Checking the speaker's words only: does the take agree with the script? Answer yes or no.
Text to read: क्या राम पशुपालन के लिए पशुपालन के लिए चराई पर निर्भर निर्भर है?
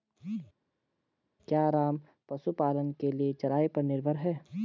no